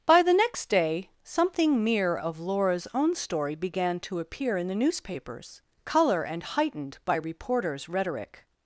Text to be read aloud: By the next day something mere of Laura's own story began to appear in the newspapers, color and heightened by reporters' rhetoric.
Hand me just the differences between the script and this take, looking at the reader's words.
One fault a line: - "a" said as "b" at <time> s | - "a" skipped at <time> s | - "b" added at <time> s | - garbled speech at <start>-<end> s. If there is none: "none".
none